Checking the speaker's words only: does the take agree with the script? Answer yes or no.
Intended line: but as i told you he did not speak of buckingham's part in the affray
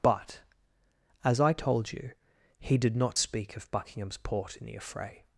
no